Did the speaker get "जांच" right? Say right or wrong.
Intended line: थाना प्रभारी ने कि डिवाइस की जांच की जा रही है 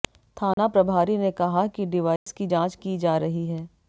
right